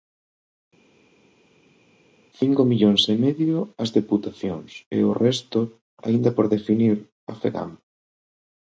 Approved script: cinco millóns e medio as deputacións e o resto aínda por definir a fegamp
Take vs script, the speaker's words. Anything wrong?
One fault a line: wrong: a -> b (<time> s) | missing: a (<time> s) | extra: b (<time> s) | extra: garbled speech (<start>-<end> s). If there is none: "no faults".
no faults